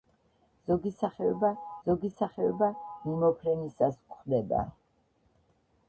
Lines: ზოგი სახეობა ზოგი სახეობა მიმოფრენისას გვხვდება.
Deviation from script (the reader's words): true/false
false